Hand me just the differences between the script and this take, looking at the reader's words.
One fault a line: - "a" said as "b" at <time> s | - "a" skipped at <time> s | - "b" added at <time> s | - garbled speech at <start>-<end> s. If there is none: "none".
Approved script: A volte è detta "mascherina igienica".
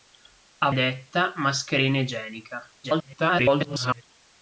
- "volte" skipped at 0.7 s
- garbled speech at 2.8-4.0 s